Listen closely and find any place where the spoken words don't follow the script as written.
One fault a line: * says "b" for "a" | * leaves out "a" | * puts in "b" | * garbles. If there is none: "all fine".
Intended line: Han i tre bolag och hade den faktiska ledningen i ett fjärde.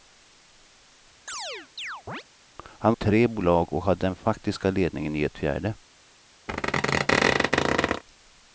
all fine